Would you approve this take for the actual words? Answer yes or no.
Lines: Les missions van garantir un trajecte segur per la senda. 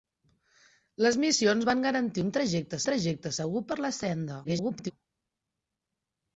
no